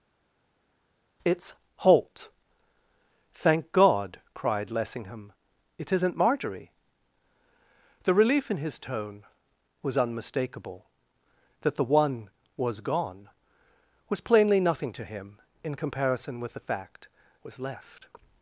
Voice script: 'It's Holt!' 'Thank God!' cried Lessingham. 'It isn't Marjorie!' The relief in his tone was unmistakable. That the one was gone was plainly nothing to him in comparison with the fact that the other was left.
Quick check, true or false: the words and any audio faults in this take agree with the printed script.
false